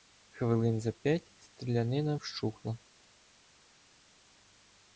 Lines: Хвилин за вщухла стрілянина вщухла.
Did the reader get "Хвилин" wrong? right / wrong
right